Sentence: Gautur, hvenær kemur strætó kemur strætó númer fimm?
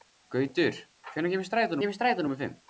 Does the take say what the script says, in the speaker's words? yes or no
yes